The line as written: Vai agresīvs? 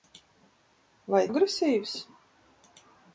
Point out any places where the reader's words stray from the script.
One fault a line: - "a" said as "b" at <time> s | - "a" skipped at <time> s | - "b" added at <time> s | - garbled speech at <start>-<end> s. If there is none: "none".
none